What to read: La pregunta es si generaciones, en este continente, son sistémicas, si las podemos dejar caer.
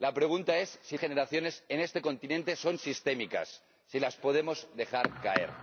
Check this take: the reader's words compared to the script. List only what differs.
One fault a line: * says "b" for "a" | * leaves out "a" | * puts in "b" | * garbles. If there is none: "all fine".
all fine